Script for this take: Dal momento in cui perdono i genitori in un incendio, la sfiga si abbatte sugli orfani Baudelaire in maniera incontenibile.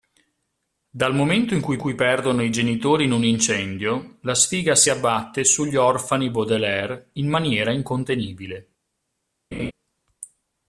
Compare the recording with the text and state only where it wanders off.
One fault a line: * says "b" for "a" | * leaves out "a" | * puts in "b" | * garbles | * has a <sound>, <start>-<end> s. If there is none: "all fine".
* puts in "cui"
* has a laugh, 9.5-9.7 s